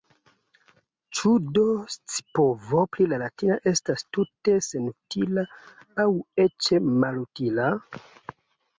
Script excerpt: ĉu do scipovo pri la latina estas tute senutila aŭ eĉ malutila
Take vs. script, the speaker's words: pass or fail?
pass